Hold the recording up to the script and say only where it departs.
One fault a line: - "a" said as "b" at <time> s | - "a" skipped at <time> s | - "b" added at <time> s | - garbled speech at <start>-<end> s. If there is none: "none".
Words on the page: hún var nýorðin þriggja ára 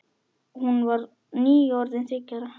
none